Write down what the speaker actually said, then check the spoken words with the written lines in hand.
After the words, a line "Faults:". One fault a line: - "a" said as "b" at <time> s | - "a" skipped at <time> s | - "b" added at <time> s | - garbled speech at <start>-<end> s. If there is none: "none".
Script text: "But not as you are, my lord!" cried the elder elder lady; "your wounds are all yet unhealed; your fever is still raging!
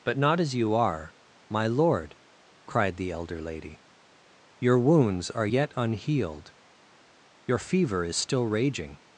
"But not as you are, my lord!" cried the elder lady; "your wounds are yet unhealed; your fever is still raging!
Faults:
- "elder" skipped at 3.4 s
- "all" skipped at 5.5 s